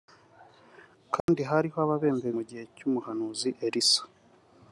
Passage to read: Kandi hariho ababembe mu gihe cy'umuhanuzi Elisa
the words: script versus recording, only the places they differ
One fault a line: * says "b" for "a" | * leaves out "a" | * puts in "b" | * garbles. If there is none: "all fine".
all fine